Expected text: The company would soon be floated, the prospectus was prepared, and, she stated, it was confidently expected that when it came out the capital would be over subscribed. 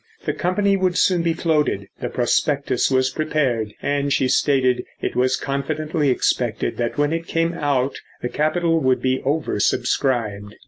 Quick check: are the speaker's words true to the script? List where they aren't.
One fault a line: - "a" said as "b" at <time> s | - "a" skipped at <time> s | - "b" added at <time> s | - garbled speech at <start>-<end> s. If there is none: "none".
none